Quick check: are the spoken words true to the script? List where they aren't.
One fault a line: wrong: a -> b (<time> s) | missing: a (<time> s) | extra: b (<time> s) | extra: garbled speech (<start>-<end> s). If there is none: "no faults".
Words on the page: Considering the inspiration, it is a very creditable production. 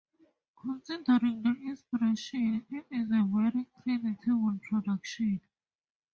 no faults